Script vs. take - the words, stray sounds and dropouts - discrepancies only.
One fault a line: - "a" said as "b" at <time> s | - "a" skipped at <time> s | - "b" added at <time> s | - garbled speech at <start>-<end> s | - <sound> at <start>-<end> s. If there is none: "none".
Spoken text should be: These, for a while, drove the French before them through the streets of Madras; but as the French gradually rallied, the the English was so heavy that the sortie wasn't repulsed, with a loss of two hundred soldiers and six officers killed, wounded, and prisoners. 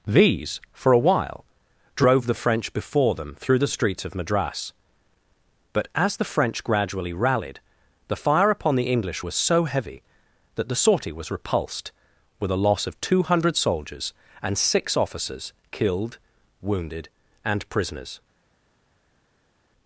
- "fire upon" added at 8.1 s
- "wasn't" said as "was" at 11.1 s